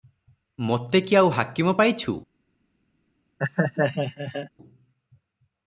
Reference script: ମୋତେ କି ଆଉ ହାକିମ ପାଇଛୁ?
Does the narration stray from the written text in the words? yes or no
no